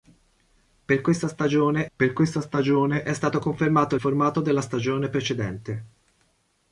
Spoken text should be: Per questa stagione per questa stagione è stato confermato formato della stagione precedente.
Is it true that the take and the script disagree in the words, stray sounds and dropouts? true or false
false